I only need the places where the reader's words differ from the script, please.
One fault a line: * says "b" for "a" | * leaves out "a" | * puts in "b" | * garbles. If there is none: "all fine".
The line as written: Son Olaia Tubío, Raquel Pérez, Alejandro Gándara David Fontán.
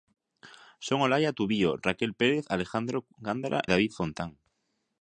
all fine